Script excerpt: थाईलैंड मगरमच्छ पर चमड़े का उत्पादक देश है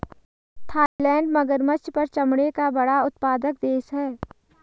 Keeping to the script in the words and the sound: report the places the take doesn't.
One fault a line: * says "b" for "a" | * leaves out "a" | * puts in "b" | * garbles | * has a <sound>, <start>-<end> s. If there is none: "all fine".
* has a dropout, 0.9-1.0 s
* puts in "बड़ा"